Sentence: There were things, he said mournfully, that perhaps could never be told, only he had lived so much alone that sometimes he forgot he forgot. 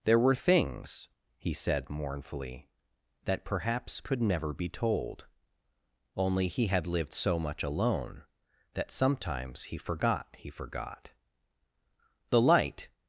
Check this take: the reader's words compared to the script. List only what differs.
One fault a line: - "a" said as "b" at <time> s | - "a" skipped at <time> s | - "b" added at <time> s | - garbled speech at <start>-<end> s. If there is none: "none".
- "The light" added at 12.3 s